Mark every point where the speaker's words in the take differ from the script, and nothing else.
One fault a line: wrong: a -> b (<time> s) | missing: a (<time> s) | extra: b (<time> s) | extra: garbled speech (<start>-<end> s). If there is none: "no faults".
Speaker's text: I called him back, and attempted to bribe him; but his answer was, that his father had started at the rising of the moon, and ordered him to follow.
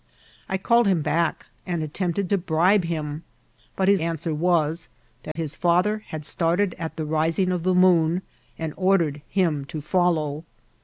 no faults